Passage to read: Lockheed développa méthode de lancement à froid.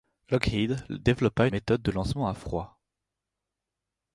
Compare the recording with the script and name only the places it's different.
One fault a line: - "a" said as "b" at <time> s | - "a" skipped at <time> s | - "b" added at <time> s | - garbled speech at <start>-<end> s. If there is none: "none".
none